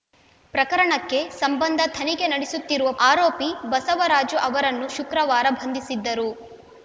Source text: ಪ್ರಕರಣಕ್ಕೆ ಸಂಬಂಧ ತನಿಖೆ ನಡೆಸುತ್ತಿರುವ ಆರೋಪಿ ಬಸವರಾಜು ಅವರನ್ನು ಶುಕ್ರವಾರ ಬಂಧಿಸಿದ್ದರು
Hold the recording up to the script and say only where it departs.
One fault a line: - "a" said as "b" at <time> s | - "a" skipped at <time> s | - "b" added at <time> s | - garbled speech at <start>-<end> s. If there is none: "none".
none